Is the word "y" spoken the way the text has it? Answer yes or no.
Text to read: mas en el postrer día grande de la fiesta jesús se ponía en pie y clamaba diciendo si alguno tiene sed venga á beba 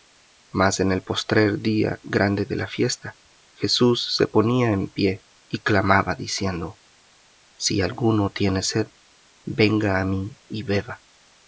yes